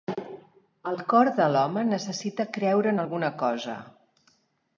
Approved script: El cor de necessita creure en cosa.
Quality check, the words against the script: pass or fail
fail